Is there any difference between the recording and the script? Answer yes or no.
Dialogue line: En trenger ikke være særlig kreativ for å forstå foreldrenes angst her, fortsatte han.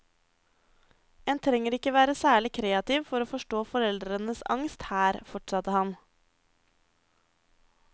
no